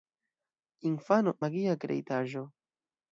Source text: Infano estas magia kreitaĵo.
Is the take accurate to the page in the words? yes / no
no